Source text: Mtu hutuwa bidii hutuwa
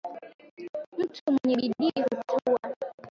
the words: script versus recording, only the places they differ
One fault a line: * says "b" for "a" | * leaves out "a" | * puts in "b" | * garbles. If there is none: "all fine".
* says "mwenye" for "hutuwa"